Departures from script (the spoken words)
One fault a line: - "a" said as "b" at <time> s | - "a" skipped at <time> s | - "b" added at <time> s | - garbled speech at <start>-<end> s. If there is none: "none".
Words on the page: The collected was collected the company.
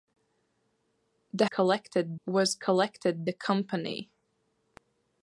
none